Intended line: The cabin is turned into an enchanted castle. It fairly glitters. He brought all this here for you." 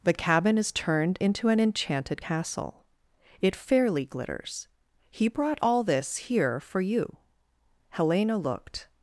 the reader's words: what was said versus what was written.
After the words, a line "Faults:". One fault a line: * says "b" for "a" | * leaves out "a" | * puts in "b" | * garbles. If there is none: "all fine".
The cabin is turned into an enchanted castle. It fairly glitters. He brought all this here for you." Helena looked
Faults:
* puts in "Helena looked"